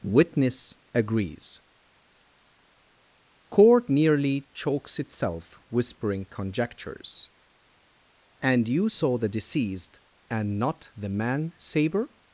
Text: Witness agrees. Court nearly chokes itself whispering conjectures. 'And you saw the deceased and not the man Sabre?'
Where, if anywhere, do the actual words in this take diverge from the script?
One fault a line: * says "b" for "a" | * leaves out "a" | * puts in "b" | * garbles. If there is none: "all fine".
all fine